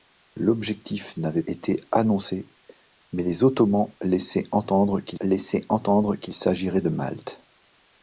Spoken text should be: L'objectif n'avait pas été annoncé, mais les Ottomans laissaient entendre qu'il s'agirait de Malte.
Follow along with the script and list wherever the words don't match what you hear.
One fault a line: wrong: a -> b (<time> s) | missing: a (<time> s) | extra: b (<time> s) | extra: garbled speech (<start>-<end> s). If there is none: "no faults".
missing: pas (1.4 s)
extra: laissaient entendre qu'il (5.2 s)